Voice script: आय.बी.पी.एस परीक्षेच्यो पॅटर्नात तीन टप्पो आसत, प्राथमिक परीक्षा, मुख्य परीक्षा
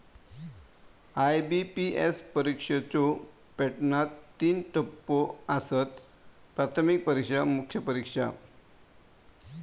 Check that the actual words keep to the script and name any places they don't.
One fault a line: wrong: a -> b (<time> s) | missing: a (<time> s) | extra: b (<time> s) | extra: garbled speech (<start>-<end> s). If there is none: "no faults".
no faults